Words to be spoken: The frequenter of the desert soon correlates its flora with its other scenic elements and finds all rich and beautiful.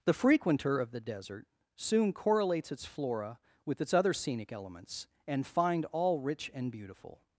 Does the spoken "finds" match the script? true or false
false